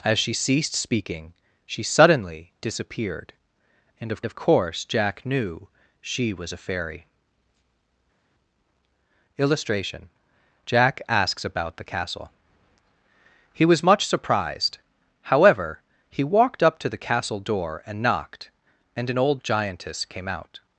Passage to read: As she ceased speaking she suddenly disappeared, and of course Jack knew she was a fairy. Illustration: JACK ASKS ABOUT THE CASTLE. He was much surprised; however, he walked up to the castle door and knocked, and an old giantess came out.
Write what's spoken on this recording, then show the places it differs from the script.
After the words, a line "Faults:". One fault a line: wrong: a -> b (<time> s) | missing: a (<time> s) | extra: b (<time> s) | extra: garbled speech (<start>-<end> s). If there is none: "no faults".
As she ceased speaking she suddenly disappeared, and of of course Jack knew she was a fairy. Illustration: JACK ASKS ABOUT THE CASTLE. He was much surprised; however, he walked up to the castle door and knocked, and an old giantess came out.
Faults:
extra: of (4.2 s)